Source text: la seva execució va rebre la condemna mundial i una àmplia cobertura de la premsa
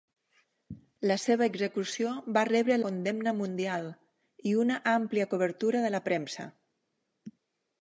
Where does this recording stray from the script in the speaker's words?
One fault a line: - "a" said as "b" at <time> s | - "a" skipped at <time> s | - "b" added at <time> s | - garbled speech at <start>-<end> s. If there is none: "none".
- "la" skipped at 2.8 s